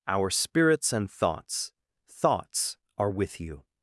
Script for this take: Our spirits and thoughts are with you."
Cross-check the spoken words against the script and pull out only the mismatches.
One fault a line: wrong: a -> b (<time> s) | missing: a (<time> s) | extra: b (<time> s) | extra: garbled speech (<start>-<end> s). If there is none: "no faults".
extra: thoughts (2.1 s)